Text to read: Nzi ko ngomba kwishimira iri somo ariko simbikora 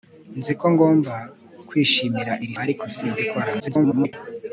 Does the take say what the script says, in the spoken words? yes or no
no